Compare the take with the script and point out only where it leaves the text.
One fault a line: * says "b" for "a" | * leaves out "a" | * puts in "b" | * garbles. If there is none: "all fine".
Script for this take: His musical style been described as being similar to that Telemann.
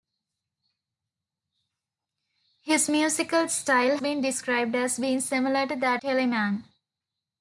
all fine